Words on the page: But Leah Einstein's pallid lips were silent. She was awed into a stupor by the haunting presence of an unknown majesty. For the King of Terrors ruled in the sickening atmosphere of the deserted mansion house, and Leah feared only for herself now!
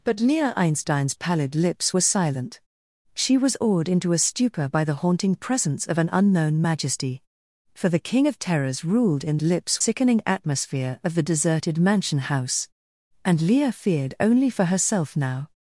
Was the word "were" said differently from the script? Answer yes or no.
no